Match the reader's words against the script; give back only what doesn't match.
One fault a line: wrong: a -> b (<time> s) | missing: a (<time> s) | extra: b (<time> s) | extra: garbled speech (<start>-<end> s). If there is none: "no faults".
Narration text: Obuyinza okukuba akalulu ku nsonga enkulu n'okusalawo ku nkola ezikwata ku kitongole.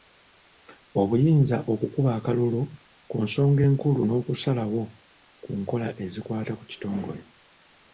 no faults